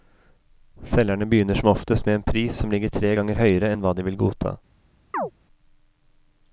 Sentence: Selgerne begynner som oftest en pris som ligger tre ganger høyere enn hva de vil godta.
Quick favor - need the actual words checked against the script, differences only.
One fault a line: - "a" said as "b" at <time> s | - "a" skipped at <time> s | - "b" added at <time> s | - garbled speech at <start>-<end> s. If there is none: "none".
- "med" added at 2.0 s